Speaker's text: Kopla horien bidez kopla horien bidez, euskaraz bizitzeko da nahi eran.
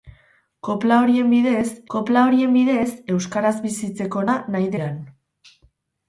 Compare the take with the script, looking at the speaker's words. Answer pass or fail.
pass